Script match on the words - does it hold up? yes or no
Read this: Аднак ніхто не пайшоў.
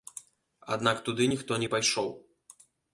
no